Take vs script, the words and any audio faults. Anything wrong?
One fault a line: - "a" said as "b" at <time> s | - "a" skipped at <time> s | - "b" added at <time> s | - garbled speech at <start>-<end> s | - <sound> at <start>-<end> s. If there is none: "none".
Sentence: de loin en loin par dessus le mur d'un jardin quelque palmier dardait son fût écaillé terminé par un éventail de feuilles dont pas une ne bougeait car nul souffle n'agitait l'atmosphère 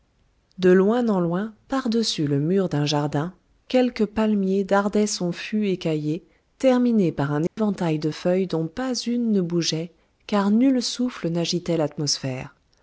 - dropout at 7.5-7.6 s